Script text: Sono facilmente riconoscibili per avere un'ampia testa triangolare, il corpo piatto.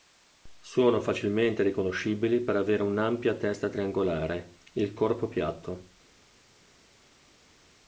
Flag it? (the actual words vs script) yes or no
no